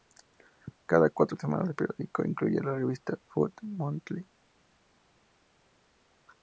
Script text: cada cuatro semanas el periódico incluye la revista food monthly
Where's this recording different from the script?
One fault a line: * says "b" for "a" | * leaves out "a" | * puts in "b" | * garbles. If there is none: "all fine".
all fine